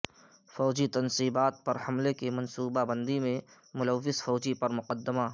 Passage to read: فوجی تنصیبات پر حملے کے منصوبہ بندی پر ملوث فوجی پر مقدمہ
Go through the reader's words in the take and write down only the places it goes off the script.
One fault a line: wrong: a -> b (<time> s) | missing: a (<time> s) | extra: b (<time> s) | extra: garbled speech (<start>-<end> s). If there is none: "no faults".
wrong: کے -> کی (2.2 s)
wrong: پر -> میں (3.2 s)